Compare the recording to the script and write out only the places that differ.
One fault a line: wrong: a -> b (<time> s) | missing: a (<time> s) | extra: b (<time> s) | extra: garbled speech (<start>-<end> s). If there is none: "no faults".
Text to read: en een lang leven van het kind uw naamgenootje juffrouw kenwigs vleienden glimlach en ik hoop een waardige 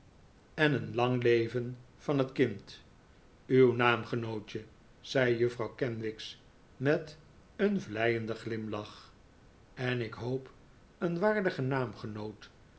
extra: zei (5.0 s)
extra: met een (6.8 s)